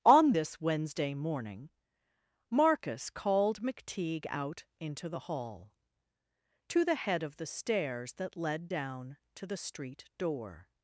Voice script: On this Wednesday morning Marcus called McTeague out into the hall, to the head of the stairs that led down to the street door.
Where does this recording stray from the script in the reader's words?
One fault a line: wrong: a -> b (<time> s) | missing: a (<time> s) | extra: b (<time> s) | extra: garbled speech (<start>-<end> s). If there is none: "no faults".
no faults